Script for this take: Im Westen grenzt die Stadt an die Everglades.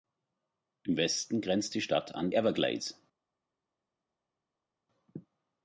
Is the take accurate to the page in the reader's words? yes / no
no